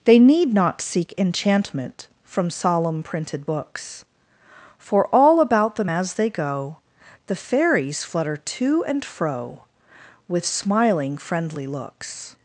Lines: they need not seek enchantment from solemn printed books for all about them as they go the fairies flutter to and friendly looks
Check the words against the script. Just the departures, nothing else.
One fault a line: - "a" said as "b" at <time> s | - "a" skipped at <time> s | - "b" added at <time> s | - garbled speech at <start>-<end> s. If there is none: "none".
- "fro with smiling" added at 9.0 s